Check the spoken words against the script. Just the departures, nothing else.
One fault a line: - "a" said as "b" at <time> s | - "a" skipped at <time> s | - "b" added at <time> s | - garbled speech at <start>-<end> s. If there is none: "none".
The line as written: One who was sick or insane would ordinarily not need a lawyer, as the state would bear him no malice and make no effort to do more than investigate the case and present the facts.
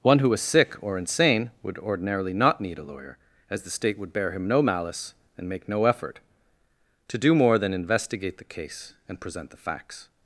none